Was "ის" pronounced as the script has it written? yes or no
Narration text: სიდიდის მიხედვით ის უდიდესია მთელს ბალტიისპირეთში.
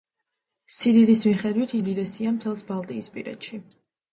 no